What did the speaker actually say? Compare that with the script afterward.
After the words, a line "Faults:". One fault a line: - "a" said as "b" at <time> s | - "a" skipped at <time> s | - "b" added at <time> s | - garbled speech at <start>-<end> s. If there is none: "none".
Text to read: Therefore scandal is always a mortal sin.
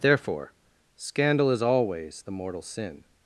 Therefore scandal is always the mortal sin.
Faults:
- "a" said as "the" at 2.2 s